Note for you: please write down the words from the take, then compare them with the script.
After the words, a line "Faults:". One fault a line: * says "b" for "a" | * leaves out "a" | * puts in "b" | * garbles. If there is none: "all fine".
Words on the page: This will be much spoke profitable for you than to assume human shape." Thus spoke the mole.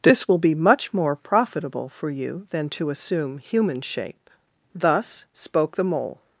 This will be much more profitable for you than to assume human shape." Thus spoke the mole.
Faults:
* says "more" for "spoke"